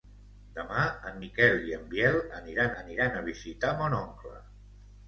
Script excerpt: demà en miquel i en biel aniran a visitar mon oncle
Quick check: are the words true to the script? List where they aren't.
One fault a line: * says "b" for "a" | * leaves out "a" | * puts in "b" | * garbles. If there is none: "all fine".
* puts in "aniran"